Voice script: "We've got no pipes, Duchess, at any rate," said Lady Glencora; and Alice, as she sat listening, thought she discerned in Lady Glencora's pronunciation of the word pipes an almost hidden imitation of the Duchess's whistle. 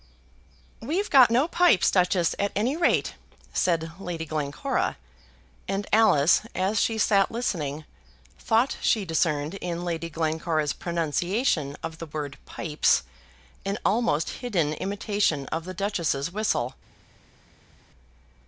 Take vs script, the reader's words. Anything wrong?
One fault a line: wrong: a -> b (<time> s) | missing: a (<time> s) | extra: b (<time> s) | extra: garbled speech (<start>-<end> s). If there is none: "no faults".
no faults